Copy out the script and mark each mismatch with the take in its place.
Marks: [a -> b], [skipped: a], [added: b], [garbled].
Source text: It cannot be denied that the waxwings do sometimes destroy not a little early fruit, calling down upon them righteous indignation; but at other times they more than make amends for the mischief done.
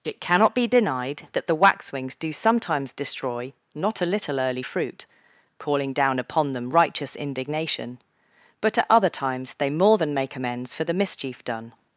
It cannot be denied that the waxwings do sometimes destroy not a little early fruit, calling down upon them righteous indignation; but at other times they more than make amends for the mischief done.